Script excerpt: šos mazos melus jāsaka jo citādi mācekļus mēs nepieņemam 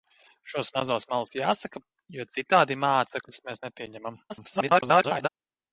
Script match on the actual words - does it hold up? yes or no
no